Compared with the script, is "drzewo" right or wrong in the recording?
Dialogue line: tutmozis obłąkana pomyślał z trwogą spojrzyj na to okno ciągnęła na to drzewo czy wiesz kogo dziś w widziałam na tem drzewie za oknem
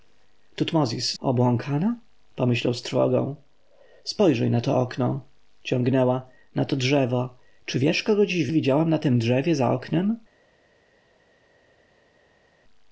right